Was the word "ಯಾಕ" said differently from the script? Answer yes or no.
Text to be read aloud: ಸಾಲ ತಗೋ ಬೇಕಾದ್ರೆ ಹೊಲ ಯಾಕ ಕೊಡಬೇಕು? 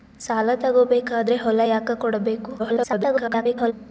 no